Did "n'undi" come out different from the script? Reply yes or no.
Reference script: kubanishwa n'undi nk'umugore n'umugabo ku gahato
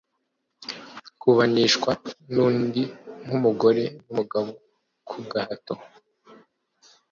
no